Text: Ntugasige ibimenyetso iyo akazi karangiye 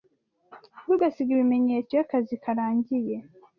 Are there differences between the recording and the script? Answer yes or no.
no